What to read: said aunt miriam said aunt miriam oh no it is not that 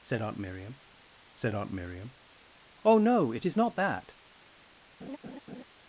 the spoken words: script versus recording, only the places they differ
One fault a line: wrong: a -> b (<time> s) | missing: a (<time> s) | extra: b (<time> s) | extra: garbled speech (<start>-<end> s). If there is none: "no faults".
no faults